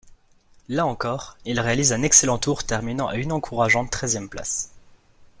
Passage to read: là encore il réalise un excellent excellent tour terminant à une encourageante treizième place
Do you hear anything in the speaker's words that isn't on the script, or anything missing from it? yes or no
yes